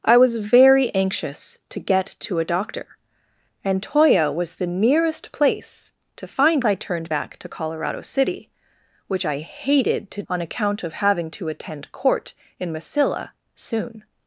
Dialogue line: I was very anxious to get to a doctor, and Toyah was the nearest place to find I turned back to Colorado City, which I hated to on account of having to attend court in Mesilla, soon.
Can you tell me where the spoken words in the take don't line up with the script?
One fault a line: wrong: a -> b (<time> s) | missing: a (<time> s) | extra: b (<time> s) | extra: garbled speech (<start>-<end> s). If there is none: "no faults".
no faults